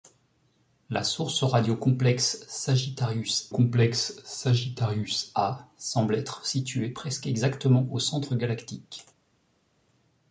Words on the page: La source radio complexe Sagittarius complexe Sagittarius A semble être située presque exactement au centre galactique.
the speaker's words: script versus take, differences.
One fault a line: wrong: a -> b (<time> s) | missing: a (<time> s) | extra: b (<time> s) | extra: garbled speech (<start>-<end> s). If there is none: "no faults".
no faults